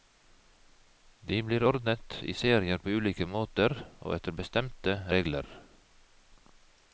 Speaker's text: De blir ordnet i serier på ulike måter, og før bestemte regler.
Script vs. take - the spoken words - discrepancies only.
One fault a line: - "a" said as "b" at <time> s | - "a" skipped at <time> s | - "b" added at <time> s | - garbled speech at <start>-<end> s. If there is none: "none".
- "før" said as "etter" at 4.2 s